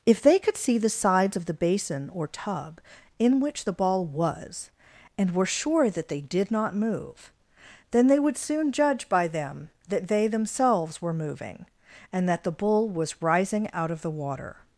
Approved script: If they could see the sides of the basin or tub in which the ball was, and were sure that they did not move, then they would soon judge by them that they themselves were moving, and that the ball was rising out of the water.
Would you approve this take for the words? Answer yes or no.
no